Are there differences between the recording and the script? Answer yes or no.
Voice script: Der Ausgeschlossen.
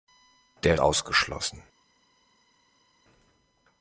no